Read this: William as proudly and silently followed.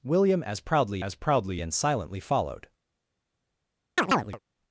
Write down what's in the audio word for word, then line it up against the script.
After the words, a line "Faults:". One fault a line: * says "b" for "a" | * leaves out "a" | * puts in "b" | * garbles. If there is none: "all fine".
William as proudly as proudly and silently followed.
Faults:
* puts in "as proudly"